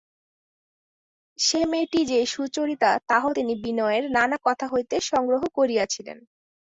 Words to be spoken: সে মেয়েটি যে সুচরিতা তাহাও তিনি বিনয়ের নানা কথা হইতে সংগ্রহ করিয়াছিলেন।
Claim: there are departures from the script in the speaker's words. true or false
false